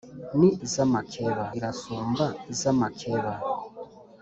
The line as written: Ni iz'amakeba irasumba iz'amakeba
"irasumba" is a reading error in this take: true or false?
false